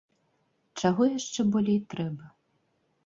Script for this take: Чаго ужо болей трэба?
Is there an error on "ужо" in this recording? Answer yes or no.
yes